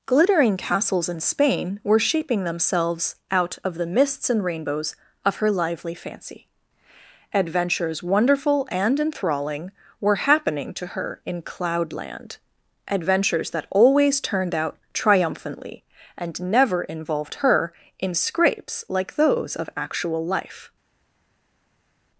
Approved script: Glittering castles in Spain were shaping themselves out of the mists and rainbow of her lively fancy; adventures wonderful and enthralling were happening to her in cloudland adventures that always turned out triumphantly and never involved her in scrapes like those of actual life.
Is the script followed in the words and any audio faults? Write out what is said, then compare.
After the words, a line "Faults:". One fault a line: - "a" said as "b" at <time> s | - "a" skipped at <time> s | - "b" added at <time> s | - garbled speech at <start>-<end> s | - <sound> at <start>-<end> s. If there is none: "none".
Glittering castles in Spain were shaping themselves out of the mists and rainbows of her lively fancy; adventures wonderful and enthralling were happening to her in cloudland adventures that always turned out triumphantly and never involved her in scrapes like those of actual life.
Faults:
- "rainbow" said as "rainbows" at 4.4 s